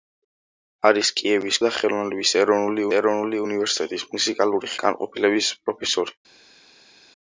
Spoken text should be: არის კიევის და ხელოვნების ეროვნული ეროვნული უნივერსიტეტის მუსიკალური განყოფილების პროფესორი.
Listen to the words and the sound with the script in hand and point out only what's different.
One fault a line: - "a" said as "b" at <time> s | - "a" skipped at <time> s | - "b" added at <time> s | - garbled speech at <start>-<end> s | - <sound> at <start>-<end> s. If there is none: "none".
none